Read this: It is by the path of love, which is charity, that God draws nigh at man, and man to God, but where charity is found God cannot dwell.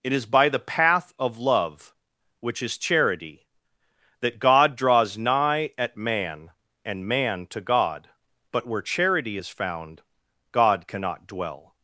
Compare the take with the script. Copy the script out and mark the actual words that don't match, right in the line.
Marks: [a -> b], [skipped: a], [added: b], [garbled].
It is by the path of love, which is charity, that God draws nigh at man, and man to God, but where charity is found God cannot dwell.